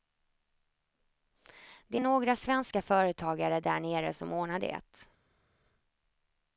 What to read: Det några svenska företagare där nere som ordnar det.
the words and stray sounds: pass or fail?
pass